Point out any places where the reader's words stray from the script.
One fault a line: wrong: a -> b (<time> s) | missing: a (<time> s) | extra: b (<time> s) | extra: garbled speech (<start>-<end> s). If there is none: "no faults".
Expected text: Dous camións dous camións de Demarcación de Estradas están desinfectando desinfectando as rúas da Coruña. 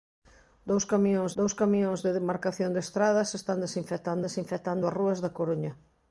no faults